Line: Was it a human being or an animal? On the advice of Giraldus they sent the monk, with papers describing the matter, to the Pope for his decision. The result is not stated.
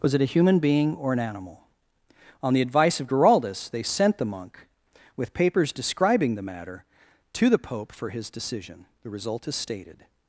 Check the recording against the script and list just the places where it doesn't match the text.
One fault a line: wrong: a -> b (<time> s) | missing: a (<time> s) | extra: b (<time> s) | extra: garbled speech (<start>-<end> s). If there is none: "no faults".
missing: not (9.6 s)